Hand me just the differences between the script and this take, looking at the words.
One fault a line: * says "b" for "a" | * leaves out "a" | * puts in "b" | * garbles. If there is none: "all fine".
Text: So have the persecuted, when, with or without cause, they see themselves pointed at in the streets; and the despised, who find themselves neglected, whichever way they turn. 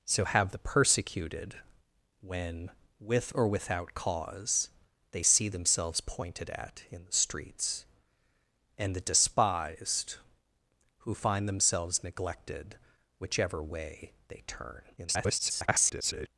* garbles